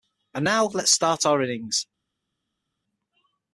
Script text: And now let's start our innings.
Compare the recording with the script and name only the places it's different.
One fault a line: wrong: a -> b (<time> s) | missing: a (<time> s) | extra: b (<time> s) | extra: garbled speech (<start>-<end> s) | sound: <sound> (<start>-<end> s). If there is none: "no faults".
no faults